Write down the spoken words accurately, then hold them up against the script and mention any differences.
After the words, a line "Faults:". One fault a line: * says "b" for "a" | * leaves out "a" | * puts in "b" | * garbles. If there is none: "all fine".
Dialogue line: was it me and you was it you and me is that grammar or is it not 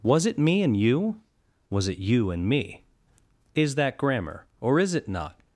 was it me and you was it you and me is that grammar or is it not
Faults:
all fine